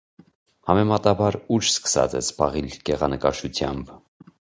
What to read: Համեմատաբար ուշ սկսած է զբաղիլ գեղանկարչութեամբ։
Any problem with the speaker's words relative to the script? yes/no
no